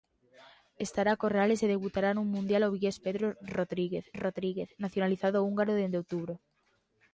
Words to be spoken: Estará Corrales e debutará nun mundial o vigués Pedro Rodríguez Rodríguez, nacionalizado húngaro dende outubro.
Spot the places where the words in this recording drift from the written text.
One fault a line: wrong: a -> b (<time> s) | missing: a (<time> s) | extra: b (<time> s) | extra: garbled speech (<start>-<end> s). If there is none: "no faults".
no faults